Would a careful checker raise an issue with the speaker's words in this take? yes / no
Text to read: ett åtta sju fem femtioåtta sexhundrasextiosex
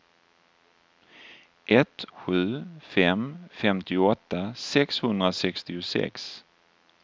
yes